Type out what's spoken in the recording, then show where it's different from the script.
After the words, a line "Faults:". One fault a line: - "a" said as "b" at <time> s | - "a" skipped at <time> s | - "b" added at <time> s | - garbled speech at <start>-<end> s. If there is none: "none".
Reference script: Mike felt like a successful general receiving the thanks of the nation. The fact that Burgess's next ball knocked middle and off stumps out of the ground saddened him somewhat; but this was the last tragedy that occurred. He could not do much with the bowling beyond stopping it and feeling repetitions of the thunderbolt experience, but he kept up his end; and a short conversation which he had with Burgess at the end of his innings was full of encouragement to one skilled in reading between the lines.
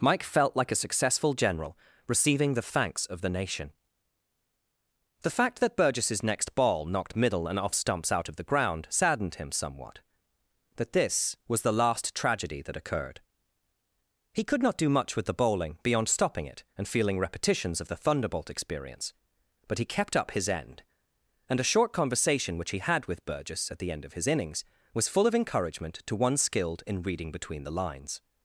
Mike felt like a successful general receiving the thanks of the nation. The fact that Burgess's next ball knocked middle and off stumps out of the ground saddened him somewhat; that this was the last tragedy that occurred. He could not do much with the bowling beyond stopping it and feeling repetitions of the thunderbolt experience, but he kept up his end; and a short conversation which he had with Burgess at the end of his innings was full of encouragement to one skilled in reading between the lines.
Faults:
- "but" said as "that" at 10.8 s